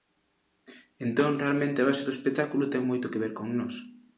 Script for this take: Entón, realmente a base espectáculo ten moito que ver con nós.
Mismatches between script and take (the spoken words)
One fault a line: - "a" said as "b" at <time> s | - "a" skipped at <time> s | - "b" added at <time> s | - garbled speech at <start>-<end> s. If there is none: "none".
- "do" added at 2.0 s